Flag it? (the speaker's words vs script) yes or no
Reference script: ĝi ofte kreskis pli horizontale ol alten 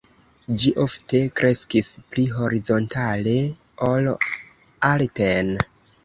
no